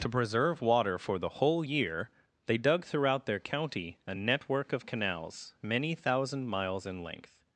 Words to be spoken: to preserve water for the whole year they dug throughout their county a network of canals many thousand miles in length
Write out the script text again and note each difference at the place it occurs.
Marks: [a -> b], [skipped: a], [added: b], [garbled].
to preserve water for the whole year they dug throughout their county a network of canals many thousand miles in length